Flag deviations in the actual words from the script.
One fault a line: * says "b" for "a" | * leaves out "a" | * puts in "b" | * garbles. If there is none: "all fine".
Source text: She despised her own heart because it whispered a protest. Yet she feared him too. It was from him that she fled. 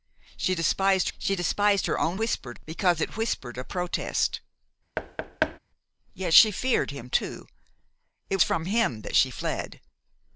* puts in "she despised"
* says "whispered" for "heart"
* leaves out "was"